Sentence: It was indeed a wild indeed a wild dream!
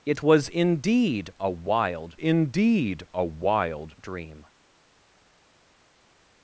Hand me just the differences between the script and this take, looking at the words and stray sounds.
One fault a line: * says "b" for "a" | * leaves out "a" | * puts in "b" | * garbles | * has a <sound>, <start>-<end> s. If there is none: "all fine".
all fine